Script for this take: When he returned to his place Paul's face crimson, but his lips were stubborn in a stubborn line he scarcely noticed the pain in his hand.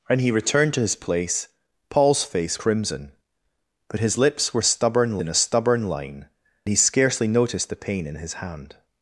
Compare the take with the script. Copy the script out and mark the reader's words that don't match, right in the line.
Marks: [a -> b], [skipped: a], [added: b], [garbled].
When he returned to his place Paul's face crimson, but his lips were stubborn in a stubborn line he scarcely noticed the pain in his hand.